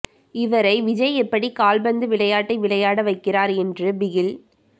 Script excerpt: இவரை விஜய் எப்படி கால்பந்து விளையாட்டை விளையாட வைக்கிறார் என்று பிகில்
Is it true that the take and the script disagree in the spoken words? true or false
false